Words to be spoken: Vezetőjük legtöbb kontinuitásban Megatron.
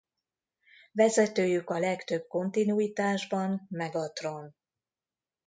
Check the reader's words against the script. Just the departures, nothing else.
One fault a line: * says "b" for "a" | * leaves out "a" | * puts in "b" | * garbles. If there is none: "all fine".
* puts in "a"